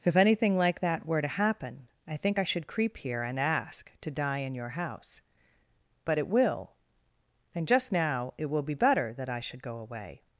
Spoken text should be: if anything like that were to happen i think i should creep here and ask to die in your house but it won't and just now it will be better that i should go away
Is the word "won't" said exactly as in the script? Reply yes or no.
no